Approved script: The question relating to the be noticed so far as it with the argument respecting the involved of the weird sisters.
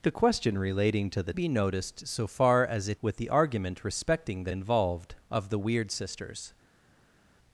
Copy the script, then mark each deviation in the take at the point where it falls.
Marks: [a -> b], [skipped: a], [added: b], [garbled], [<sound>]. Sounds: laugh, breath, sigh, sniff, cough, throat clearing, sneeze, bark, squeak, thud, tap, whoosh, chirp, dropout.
The question relating to the be noticed so far as it with the argument respecting the involved of the weird sisters.